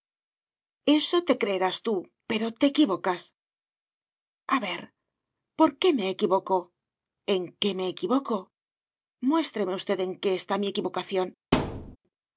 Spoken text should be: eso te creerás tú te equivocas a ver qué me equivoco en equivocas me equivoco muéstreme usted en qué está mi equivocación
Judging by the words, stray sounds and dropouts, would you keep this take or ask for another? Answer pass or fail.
fail